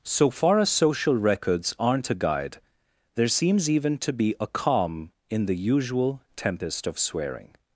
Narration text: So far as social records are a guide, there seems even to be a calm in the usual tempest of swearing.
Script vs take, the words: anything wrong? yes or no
yes